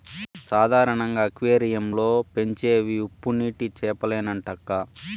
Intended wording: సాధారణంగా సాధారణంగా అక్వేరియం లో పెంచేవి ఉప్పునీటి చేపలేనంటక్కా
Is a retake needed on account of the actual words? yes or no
yes